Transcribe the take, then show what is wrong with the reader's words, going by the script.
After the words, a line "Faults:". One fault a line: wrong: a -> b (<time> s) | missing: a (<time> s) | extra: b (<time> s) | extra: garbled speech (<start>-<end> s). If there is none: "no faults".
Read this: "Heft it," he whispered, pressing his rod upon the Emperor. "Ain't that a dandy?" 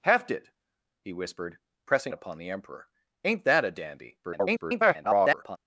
"Heft it," he whispered, pressing upon the Emperor. "Ain't that a dandy?" [garbled]
Faults:
missing: his rod (2.1 s)
extra: garbled speech (4.2-5.6 s)